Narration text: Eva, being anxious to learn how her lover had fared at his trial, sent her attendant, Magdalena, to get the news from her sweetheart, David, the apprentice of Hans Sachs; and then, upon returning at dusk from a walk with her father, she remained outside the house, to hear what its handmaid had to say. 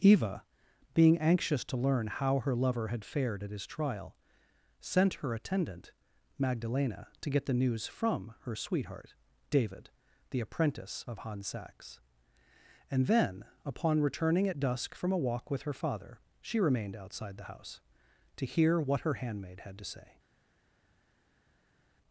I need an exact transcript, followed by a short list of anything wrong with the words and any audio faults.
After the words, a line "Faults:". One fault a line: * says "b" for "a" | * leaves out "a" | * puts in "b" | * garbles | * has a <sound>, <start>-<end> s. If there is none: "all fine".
Eva, being anxious to learn how her lover had fared at his trial, sent her attendant, Magdalena, to get the news from her sweetheart, David, the apprentice of Hans Sachs; and then, upon returning at dusk from a walk with her father, she remained outside the house, to hear what her handmaid had to say.
Faults:
* says "her" for "its"